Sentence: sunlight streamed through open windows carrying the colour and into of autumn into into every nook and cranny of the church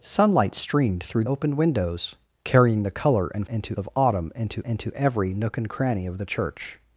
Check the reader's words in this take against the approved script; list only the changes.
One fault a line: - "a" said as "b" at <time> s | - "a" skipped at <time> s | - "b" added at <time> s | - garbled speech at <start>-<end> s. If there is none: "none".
none